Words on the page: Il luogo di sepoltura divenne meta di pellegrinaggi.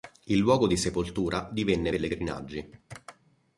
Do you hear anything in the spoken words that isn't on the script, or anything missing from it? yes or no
yes